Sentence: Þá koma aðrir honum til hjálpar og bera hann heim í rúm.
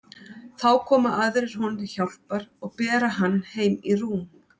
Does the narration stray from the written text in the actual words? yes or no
no